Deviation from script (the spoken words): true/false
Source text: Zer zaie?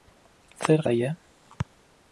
false